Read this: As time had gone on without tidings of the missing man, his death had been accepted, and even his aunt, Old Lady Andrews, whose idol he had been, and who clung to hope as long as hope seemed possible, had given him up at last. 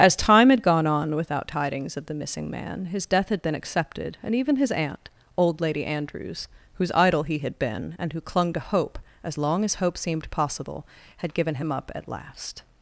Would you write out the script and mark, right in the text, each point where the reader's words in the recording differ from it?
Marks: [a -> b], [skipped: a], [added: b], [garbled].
As time had gone on without tidings of the missing man, his death had been accepted, and even his aunt, Old Lady Andrews, whose idol he had been, and who clung to hope as long as hope seemed possible, had given him up at last.